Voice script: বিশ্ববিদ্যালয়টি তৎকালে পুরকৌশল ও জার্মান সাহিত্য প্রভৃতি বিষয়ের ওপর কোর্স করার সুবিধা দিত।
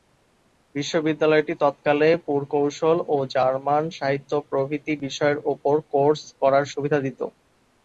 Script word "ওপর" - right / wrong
right